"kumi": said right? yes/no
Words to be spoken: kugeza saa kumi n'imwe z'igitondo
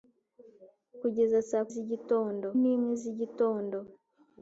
no